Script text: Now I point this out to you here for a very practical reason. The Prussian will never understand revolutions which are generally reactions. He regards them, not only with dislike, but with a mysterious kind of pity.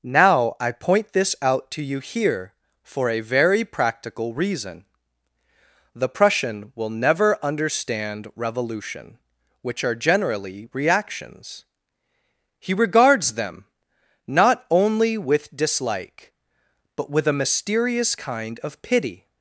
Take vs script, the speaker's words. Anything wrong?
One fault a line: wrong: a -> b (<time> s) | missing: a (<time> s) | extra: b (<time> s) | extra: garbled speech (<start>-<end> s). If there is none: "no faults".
wrong: revolutions -> revolution (8.4 s)